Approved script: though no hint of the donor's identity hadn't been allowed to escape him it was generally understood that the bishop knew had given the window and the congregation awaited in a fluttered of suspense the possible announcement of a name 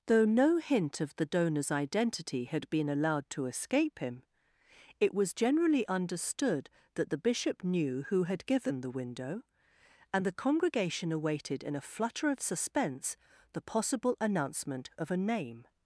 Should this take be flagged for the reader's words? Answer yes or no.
yes